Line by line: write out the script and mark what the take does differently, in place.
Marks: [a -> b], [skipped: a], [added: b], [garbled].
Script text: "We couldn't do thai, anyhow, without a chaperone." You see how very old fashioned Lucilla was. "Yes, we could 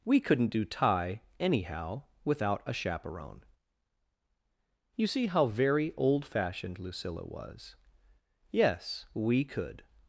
"We couldn't do thai, anyhow, without a chaperone." You see how very old fashioned Lucilla was. "Yes, we could